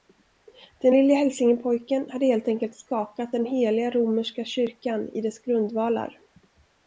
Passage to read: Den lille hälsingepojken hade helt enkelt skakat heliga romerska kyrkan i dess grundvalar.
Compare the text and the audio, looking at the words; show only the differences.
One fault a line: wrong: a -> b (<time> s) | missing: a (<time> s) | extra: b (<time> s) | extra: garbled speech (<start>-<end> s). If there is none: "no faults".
extra: den (3.3 s)